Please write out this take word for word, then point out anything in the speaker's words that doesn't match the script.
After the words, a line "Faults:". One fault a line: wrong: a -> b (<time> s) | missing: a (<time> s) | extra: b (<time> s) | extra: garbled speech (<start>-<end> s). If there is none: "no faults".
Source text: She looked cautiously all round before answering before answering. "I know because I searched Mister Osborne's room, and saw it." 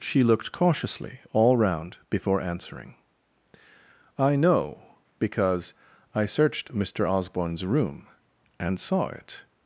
She looked cautiously all round before answering. "I know because I searched Mister Osborne's room, and saw it."
Faults:
missing: before answering (3.0 s)